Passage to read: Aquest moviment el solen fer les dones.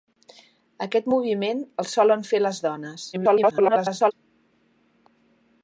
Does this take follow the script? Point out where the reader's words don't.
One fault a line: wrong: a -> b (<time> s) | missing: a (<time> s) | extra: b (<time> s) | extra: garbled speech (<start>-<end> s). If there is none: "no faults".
extra: garbled speech (3.1-4.1 s)